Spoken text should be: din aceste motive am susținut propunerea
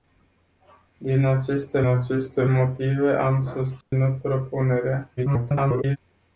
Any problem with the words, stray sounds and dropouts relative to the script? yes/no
yes